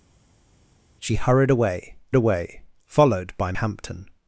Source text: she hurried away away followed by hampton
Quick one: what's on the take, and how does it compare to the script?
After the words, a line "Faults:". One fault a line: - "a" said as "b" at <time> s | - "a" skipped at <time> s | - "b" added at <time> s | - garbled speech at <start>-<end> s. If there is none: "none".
she hurried away away followed by hampton
Faults:
none